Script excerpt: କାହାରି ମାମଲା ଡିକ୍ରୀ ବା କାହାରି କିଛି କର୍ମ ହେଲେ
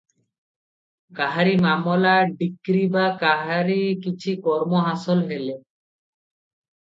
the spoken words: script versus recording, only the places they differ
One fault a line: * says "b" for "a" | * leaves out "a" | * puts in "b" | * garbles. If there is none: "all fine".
* puts in "ହାସଲ"